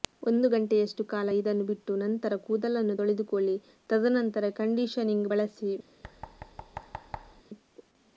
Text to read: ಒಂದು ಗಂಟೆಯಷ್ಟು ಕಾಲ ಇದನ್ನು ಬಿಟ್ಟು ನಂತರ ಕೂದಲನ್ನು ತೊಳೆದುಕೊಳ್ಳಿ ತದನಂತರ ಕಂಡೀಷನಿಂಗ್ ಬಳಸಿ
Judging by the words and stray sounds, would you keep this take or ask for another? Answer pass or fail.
fail